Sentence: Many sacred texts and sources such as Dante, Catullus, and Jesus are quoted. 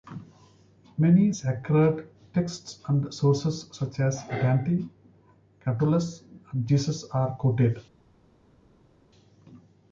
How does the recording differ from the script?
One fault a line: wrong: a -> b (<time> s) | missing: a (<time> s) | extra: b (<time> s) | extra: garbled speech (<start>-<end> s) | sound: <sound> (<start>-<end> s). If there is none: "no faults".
no faults